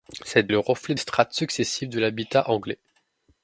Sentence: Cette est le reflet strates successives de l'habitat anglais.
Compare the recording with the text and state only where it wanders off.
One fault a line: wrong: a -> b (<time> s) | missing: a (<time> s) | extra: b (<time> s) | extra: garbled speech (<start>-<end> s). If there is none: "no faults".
no faults